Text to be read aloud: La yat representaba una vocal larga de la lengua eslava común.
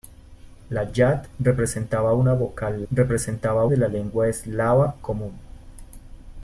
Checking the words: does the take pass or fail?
fail